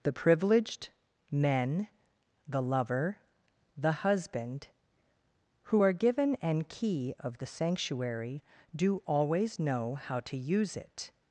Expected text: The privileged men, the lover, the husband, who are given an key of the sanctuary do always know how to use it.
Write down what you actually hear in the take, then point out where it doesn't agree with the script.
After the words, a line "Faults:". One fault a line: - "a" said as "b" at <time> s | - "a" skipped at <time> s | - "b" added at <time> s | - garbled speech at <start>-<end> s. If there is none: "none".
The privileged men, the lover, the husband, who are given an key of the sanctuary do always know how to use it.
Faults:
none